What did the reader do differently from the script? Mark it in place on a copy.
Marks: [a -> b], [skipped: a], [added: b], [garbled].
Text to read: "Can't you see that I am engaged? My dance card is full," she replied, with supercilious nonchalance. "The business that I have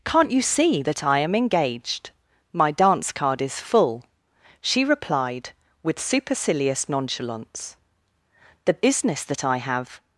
"Can't you see that I am engaged? My dance card is full," she replied, with supercilious nonchalance. "The business that I have